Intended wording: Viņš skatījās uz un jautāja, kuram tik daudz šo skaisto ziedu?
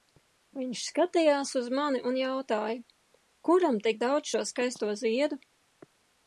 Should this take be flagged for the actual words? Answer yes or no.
yes